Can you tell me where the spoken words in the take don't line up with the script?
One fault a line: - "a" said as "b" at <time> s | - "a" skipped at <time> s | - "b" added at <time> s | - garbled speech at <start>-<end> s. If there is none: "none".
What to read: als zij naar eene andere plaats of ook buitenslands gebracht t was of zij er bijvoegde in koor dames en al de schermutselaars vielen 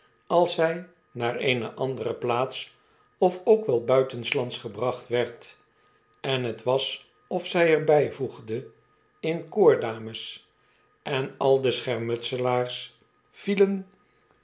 - "wel" added at 3.6 s
- "werd en" added at 5.1 s